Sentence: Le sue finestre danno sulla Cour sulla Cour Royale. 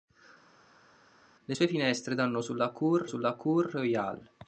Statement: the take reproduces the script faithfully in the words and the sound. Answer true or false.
true